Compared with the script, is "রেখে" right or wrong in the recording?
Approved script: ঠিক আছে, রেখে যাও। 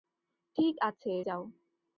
wrong